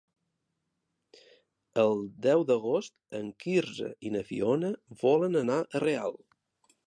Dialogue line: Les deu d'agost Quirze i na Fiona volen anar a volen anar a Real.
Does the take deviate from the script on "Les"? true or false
true